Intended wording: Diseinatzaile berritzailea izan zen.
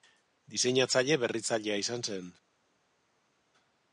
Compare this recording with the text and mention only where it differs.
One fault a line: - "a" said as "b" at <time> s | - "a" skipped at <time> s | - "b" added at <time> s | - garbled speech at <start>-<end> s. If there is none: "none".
none